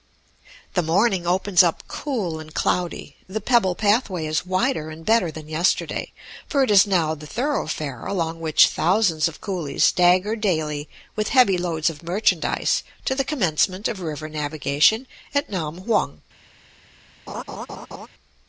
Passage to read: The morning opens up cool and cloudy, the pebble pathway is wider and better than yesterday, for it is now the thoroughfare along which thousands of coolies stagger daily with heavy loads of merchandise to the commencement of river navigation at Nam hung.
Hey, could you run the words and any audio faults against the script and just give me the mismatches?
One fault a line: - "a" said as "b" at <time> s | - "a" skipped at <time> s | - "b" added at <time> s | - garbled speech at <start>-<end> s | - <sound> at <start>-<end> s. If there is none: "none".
- laugh at 17.3-18.1 s